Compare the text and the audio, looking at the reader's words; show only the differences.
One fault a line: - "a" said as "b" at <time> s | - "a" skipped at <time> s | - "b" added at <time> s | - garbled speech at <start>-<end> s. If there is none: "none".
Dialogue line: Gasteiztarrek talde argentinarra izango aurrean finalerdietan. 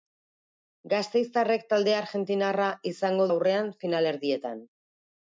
none